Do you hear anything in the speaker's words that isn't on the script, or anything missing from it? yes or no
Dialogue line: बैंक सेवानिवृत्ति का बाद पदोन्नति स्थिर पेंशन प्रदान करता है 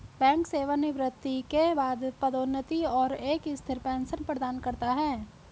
yes